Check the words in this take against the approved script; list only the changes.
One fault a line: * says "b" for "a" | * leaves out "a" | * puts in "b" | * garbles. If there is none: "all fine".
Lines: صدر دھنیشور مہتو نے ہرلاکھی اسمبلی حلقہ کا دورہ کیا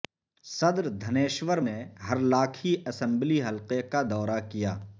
* leaves out "مہتو"